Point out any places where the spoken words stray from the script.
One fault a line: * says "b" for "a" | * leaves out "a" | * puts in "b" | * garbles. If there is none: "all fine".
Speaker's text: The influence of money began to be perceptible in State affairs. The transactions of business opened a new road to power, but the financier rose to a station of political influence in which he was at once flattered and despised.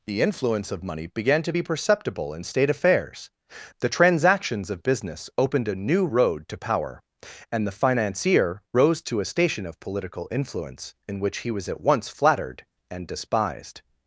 * says "and" for "but"